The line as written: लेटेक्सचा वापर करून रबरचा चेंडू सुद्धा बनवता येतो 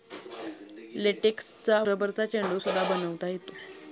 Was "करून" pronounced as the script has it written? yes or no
no